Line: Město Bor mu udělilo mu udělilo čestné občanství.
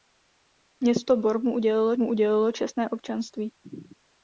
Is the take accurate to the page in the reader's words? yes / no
yes